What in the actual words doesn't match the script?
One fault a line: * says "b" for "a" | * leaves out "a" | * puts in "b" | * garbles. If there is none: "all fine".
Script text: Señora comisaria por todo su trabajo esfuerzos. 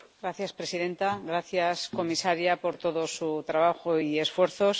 * puts in "presidenta gracias"
* puts in "y"